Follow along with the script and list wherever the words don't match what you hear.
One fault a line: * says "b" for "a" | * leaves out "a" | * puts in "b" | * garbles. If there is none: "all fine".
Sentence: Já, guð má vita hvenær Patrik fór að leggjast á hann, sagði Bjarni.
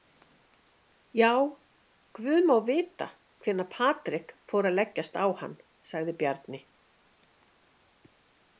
all fine